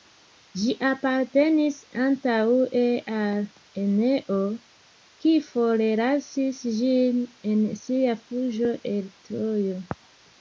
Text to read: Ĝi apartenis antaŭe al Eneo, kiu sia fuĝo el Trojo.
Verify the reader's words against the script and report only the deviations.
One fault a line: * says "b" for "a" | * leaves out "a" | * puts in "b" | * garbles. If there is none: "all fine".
* puts in "forlasis ĝin en"